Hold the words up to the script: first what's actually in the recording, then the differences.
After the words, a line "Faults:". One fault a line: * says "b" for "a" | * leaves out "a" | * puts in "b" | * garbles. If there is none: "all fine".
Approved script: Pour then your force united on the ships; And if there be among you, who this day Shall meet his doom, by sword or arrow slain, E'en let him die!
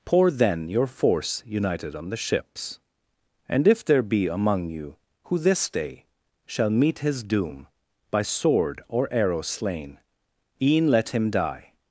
Pour then your force united on the ships; And if there be among you, who this day Shall meet his doom, by sword or arrow slain, E'en let him die!
Faults:
all fine